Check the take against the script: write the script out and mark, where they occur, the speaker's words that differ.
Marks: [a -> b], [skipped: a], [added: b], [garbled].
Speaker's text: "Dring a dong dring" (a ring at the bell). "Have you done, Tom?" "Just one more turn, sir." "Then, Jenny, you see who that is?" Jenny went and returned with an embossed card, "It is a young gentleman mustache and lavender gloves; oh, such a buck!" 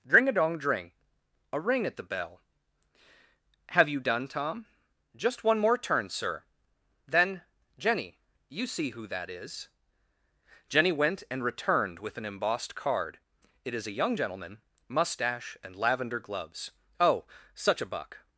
"Dring a dong dring" (a ring at the bell). "Have you done, Tom?" "Just one more turn, sir." "Then, Jenny, you see who that is?" Jenny went and returned with an embossed card, "It is a young gentleman mustache and lavender gloves; oh, such a buck!"